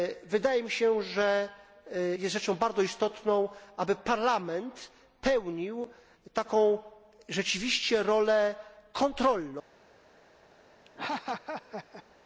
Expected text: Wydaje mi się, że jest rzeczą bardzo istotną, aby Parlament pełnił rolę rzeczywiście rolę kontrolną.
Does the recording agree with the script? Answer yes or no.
no